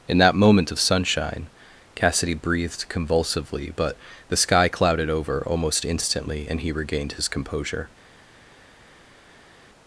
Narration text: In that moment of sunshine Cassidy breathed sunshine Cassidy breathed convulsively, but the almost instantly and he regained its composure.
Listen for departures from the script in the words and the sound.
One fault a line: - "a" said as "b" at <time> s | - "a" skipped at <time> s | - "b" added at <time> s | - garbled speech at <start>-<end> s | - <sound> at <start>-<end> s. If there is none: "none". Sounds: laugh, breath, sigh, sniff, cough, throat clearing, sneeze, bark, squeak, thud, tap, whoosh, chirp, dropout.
- "sunshine Cassidy breathed convulsively but the" said as "convulsively but the sky clouded over" at 2.9 s
- "its" said as "his" at 7.1 s